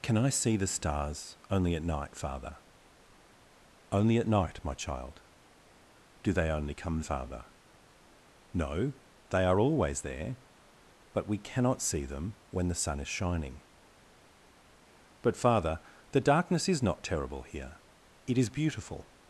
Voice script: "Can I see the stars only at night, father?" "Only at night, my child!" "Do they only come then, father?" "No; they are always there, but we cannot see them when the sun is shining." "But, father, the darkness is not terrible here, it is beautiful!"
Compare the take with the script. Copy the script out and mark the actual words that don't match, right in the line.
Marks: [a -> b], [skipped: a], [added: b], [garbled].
"Can I see the stars only at night, father?" "Only at night, my child!" "Do they only come [skipped: then,] father?" "No; they are always there, but we cannot see them when the sun is shining." "But, father, the darkness is not terrible here, it is beautiful!"